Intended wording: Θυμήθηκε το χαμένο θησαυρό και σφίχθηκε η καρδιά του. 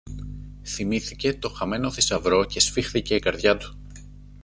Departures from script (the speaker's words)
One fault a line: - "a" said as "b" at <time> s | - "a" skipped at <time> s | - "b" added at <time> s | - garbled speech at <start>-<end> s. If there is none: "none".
none